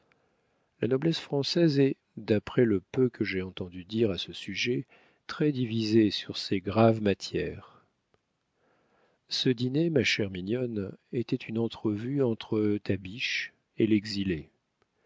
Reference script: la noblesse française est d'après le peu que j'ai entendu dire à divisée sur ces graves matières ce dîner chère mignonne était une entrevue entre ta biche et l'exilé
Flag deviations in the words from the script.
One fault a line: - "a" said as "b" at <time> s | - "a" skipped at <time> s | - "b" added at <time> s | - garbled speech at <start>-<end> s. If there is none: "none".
- "ce sujet très" added at 4.2 s
- "ma" added at 9.9 s